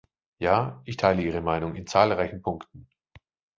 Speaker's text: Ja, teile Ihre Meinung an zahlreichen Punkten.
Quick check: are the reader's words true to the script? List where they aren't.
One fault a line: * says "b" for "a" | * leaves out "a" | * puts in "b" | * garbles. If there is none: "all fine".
* puts in "ich"
* says "in" for "an"